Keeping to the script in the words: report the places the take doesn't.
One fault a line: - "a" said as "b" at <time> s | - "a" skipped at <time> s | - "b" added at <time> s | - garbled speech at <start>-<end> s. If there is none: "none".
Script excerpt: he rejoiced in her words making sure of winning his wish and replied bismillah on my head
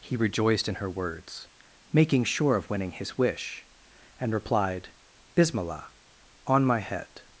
none